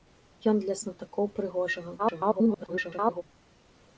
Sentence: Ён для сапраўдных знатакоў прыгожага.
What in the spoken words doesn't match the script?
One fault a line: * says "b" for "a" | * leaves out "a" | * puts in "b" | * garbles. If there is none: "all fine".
* leaves out "сапраўдных"
* garbles